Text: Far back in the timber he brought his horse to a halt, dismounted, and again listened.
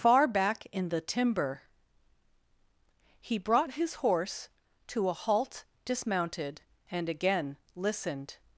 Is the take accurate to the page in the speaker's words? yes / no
yes